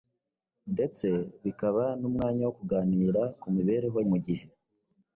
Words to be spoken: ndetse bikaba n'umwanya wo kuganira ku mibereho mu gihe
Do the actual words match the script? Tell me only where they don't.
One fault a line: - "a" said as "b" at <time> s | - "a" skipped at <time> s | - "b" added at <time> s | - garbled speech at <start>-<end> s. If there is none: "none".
none